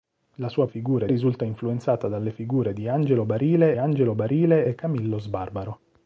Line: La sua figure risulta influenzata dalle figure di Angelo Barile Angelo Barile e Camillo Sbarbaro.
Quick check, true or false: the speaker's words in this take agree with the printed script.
true